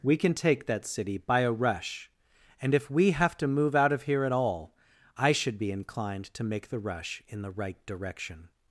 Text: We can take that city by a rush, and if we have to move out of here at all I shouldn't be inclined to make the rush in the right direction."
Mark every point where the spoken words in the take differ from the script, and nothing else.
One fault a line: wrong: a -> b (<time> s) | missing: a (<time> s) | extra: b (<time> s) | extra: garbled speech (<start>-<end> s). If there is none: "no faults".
wrong: shouldn't -> should (5.3 s)